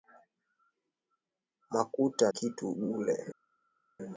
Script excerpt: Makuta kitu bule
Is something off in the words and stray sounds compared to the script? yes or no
no